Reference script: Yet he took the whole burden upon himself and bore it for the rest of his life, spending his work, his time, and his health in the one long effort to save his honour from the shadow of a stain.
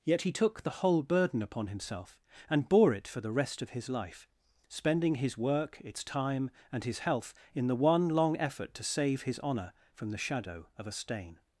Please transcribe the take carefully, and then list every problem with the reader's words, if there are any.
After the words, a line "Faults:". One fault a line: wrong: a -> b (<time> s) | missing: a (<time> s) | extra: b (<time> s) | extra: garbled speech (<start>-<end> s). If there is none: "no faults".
Yet he took the whole burden upon himself and bore it for the rest of his life, spending his work, its time, and his health in the one long effort to save his honour from the shadow of a stain.
Faults:
wrong: his -> its (5.8 s)